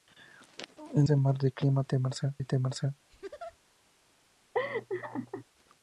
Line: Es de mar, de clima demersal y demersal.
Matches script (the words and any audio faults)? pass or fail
fail